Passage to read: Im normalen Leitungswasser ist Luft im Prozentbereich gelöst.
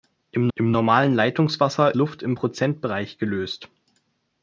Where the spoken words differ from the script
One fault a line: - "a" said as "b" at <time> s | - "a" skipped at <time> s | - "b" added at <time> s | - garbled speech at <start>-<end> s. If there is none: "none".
- "im" added at 0.5 s
- "ist" skipped at 1.9 s